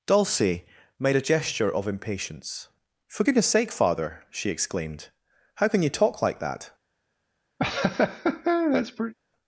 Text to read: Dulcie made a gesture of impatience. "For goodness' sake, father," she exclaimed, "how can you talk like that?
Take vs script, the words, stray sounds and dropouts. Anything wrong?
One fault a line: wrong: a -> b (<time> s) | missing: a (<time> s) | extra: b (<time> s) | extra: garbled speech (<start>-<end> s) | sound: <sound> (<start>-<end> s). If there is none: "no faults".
sound: laugh (7.6-9.1 s)